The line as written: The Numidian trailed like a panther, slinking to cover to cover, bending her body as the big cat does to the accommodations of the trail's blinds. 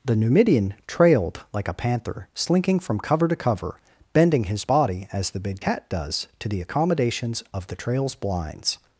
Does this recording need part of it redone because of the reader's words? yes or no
yes